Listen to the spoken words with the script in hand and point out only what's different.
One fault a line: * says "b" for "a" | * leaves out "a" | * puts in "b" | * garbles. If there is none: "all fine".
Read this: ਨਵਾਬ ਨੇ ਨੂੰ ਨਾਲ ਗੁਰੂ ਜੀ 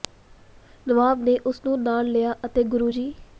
* puts in "ਉਸ"
* puts in "ਲਿਆ ਅਤੇ"